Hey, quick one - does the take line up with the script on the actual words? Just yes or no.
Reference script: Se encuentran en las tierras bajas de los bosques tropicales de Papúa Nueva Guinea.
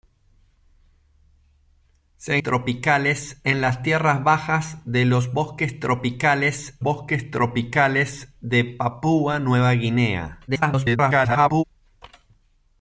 no